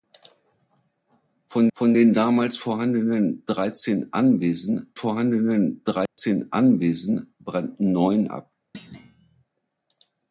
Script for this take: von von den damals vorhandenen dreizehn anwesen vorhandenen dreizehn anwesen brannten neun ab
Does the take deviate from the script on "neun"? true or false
false